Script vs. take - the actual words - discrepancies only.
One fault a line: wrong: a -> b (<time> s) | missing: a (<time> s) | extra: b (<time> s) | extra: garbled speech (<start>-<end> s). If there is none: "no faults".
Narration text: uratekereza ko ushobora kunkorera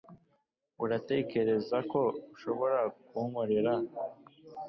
no faults